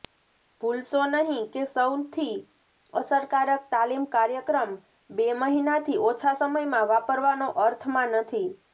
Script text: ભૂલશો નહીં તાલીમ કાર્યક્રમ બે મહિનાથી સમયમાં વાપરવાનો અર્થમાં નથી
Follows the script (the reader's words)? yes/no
no